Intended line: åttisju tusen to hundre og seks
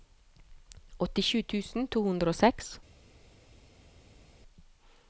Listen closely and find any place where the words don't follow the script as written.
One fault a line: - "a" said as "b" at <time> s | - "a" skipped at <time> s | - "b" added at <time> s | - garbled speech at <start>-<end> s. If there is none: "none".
none